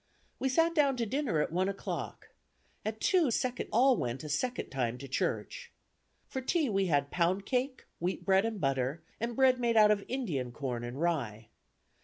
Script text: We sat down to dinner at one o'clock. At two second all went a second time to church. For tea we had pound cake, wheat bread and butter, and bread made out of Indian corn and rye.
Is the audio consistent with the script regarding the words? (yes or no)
yes